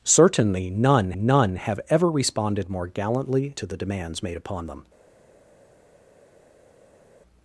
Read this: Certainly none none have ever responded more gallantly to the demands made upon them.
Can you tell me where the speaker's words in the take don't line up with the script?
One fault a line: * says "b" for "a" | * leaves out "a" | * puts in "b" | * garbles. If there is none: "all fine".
all fine